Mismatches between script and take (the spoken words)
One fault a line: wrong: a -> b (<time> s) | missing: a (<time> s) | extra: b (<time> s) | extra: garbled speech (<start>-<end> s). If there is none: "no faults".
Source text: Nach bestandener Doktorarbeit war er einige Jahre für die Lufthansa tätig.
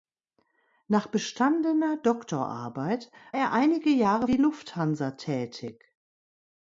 missing: war (3.1 s)
missing: für (4.3 s)